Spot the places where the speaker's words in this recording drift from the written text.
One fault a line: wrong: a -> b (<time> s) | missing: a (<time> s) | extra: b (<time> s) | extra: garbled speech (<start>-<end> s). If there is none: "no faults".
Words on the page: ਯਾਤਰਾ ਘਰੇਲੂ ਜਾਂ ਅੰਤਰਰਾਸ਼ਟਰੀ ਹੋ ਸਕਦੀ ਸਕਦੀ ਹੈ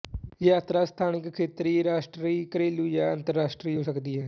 extra: ਸਥਾਨਿਕ ਖੇਤਰੀ ਰਾਸ਼ਟਰੀ (0.8 s)
missing: ਸਕਦੀ (4.2 s)